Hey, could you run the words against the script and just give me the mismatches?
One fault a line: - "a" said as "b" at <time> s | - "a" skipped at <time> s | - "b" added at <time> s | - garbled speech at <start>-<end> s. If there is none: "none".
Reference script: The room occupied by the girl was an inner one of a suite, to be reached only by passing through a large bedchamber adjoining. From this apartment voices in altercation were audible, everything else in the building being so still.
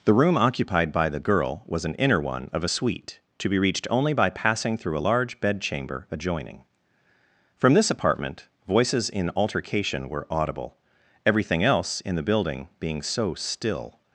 none